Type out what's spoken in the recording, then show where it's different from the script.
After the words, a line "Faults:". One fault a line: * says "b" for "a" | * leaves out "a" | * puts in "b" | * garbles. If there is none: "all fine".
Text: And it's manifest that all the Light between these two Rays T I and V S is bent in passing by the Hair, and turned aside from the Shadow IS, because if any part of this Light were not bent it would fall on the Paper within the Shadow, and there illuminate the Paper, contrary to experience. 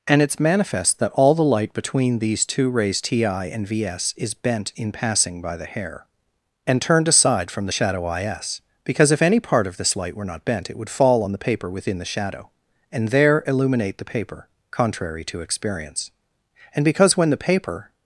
And it's manifest that all the Light between these two Rays T I and V S is bent in passing by the Hair, and turned aside from the Shadow IS, because if any part of this Light were not bent it would fall on the Paper within the Shadow, and there illuminate the Paper, contrary to experience. And because when the Paper
Faults:
* puts in "And because when the Paper"